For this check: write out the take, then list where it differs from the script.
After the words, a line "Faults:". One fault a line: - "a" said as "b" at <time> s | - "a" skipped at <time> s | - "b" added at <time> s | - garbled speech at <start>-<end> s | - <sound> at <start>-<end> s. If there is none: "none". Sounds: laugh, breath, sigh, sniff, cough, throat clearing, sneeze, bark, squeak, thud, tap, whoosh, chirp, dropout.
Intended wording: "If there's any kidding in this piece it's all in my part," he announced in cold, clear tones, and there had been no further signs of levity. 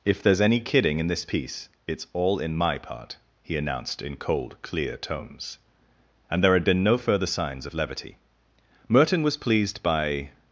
"If there's any kidding in this piece it's all in my part," he announced in cold, clear tones, and there had been no further signs of levity. Merton was pleased by
Faults:
- "Merton was pleased by" added at 8.9 s